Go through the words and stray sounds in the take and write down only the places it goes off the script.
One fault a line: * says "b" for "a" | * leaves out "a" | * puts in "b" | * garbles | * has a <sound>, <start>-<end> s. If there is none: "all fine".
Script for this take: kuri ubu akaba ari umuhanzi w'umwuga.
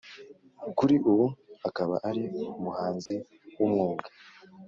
* has a dropout, 3.1-3.1 s